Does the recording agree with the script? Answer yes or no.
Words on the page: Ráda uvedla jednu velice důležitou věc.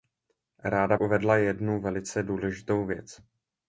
yes